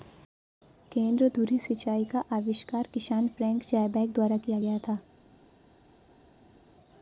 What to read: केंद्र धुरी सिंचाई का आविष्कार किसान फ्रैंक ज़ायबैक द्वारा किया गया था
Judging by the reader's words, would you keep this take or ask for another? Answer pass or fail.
pass